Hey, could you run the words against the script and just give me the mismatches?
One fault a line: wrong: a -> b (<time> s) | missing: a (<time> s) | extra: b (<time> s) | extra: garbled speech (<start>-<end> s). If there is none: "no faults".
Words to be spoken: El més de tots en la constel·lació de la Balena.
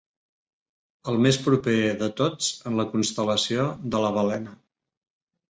extra: proper (1.5 s)